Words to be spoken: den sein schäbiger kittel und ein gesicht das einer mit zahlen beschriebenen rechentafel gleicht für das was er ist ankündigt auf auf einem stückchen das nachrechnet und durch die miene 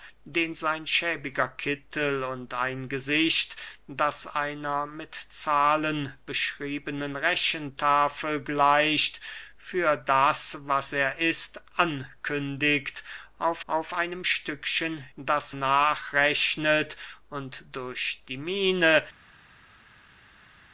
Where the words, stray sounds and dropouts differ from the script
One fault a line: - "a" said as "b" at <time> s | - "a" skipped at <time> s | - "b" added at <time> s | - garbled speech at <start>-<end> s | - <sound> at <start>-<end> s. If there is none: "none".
none